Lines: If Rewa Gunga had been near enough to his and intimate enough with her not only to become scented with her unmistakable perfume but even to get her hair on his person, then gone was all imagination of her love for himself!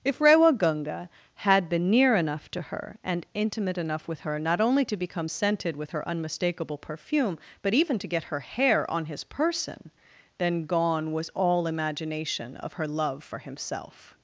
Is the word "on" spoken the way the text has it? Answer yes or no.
yes